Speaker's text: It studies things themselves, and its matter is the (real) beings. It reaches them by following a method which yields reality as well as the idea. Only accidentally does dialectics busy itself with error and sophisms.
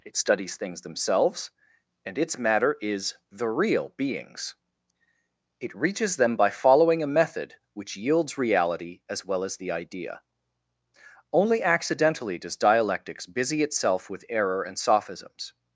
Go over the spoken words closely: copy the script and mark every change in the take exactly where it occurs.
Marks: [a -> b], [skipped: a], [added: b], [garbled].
It studies things themselves, and its matter is the (real) beings. It reaches them by following a method which yields reality as well as the idea. Only accidentally does dialectics busy itself with error and sophisms.